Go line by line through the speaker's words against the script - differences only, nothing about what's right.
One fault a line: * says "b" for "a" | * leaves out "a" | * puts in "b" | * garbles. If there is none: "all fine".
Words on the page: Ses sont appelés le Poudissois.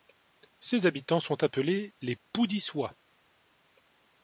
* puts in "habitants"
* says "les" for "le"